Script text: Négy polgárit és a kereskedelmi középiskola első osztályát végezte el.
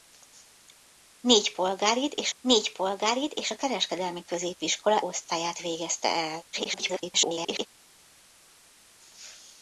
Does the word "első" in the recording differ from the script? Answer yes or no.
yes